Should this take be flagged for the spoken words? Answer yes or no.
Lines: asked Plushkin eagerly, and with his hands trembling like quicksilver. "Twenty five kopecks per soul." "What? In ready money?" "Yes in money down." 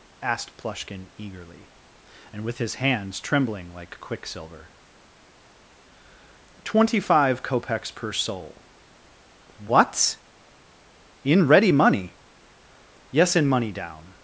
no